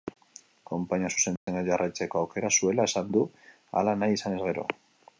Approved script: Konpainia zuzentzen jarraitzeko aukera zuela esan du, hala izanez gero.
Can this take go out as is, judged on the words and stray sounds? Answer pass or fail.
fail